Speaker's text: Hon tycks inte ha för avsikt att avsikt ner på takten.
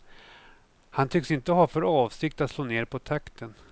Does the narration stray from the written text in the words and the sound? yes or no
yes